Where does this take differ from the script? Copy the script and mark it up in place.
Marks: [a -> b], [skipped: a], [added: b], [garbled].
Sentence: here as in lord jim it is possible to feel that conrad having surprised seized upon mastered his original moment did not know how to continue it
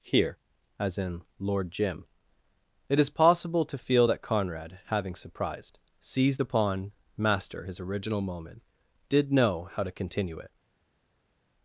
here as in lord jim it is possible to feel that conrad having surprised seized upon [mastered -> master] his original moment did [skipped: not] know how to continue it